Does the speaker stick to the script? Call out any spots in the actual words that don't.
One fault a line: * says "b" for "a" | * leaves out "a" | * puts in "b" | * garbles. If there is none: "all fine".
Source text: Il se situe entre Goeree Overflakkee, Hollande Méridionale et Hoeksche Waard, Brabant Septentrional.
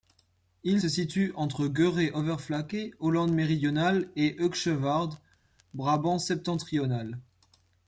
all fine